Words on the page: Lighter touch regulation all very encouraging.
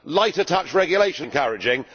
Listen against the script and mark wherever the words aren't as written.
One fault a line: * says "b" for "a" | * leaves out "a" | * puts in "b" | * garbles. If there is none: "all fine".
* leaves out "all very"